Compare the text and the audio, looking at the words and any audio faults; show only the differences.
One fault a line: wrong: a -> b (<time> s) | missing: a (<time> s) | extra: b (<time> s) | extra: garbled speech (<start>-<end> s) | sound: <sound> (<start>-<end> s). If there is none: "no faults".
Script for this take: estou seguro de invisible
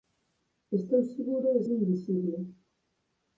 no faults